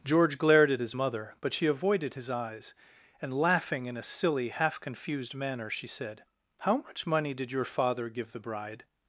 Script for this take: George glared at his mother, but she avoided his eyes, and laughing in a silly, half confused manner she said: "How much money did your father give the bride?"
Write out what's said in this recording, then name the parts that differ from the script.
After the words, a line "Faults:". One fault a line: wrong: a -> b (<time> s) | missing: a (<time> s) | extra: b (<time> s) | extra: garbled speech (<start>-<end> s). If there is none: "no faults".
George glared at his mother, but she avoided his eyes, and laughing in a silly, half confused manner she said: "How much money did your father give the bride?"
Faults:
no faults